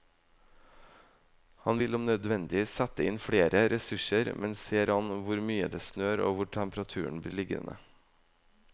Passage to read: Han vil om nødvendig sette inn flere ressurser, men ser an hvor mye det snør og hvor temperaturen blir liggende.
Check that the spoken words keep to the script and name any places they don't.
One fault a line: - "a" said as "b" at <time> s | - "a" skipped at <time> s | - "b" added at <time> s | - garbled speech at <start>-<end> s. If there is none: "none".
none